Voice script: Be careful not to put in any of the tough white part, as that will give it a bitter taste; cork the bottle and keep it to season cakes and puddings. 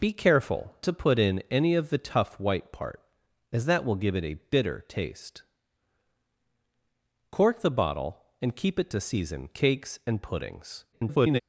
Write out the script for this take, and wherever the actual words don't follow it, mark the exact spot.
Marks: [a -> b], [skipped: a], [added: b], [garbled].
Be careful [skipped: not] to put in any of the tough white part, as that will give it a bitter taste; cork the bottle and keep it to season cakes and puddings. [garbled]